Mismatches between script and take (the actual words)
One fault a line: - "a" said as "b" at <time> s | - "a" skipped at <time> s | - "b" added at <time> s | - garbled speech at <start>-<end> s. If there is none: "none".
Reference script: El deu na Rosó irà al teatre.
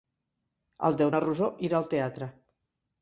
none